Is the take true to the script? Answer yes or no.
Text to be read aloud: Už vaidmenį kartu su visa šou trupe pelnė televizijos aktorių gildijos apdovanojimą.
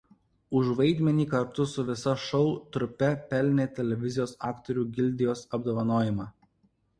yes